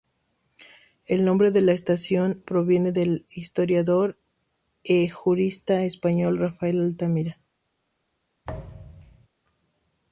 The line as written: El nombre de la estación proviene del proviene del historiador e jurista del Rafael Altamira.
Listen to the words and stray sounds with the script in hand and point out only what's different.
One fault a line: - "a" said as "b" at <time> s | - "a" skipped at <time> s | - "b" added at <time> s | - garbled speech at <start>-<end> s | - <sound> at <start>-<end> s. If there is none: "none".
- "proviene del" skipped at 3.2 s
- "del" said as "español" at 5.8 s
- thud at 8.4-9.3 s